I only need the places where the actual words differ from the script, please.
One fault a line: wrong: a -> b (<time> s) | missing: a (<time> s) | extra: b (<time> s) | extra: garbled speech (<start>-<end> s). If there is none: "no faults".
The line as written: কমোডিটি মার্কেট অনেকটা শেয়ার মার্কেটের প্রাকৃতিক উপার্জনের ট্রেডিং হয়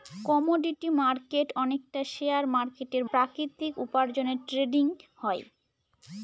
no faults